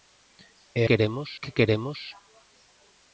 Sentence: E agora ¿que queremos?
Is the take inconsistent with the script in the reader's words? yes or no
yes